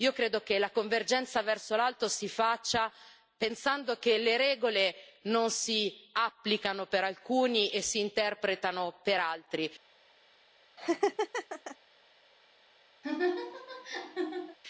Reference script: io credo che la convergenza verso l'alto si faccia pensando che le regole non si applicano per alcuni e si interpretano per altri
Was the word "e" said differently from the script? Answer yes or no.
no